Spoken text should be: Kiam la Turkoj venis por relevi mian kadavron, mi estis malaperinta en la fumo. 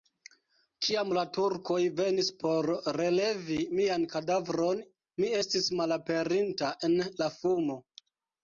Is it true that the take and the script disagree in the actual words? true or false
false